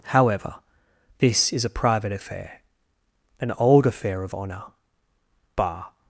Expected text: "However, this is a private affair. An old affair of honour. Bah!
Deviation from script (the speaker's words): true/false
false